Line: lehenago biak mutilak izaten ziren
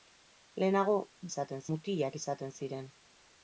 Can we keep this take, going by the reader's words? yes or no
no